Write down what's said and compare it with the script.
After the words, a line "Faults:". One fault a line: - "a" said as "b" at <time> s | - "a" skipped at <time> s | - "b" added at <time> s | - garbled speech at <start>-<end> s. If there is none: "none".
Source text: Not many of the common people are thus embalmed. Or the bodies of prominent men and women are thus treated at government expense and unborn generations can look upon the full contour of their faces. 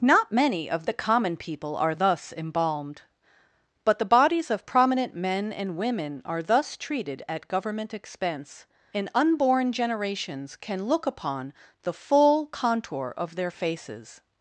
Not many of the common people are thus embalmed. But the bodies of prominent men and women are thus treated at government expense and unborn generations can look upon the full contour of their faces.
Faults:
- "Or" said as "But" at 3.8 s